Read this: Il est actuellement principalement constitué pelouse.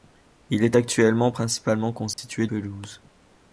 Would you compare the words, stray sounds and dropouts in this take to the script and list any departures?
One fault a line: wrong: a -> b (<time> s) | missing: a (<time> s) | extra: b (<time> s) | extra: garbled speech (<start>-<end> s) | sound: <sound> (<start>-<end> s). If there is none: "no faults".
sound: dropout (2.1-2.2 s)